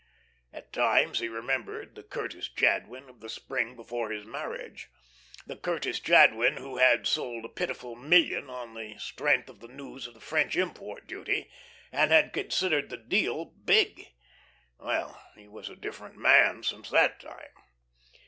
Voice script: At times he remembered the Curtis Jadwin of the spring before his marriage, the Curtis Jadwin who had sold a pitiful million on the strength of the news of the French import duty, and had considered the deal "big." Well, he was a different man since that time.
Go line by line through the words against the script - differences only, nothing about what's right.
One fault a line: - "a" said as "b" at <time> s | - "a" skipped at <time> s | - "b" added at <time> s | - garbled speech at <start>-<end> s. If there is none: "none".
none